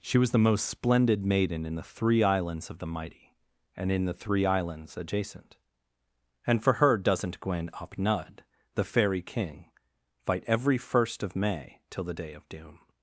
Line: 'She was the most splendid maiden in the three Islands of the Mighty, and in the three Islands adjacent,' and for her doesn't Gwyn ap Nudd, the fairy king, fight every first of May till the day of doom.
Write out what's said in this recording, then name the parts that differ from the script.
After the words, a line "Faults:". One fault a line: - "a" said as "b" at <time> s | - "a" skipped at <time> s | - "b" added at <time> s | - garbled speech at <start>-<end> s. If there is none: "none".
'She was the most splendid maiden in the three Islands of the Mighty, and in the three Islands adjacent,' and for her doesn't Gwyn ap Nudd, the fairy king, fight every first of May till the day of doom.
Faults:
none